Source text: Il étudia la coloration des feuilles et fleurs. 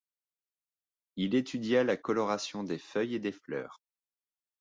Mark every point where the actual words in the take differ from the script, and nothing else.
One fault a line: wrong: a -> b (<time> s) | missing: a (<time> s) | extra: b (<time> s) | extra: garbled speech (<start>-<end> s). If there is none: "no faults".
extra: des (3.2 s)